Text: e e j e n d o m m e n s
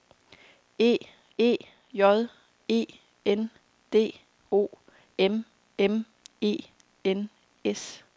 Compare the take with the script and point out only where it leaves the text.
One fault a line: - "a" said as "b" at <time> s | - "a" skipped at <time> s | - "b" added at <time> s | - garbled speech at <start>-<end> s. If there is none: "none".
none